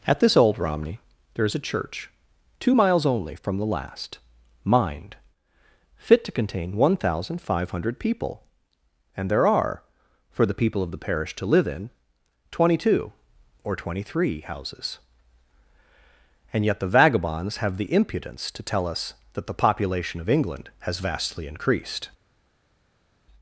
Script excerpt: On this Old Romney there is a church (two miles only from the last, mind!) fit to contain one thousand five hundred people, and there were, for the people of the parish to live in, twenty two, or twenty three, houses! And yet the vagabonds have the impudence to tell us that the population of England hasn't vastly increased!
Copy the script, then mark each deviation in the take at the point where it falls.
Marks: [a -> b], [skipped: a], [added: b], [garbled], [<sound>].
[On -> At] this Old Romney there is a church (two miles only from the last, mind!) fit to contain one thousand five hundred people, and there [were, -> are] for the people of the parish to live in, twenty two, or twenty three, houses! And yet the vagabonds have the impudence to tell us that the population of England [hasn't -> has] vastly increased!